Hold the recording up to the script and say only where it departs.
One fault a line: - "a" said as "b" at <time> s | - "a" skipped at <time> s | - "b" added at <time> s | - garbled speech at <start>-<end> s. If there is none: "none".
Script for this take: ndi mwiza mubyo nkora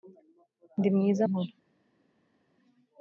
- "mubyo" skipped at 1.2 s